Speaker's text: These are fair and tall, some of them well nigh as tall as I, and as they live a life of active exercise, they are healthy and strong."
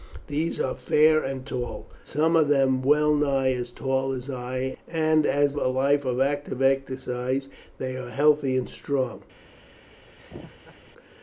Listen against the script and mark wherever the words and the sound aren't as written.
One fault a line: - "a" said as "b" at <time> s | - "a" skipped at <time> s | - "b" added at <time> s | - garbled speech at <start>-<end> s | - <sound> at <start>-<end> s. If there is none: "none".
- "they live" skipped at 5.6 s
- laugh at 10.2-10.8 s